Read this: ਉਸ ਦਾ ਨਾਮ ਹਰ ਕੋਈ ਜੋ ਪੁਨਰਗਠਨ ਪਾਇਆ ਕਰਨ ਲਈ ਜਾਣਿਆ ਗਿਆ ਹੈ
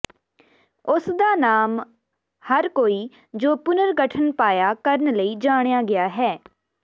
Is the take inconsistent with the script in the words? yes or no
no